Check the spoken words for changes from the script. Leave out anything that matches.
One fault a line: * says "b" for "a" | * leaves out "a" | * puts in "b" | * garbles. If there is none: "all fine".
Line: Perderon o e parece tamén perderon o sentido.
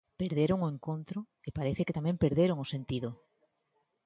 * puts in "encontro"
* puts in "que"